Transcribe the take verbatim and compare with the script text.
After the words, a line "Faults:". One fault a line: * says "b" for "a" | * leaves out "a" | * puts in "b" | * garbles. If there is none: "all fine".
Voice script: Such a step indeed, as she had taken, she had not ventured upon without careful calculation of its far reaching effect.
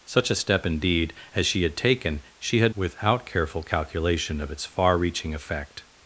Such a step indeed, as she had taken, she had without careful calculation of its far reaching effect.
Faults:
* leaves out "not ventured upon"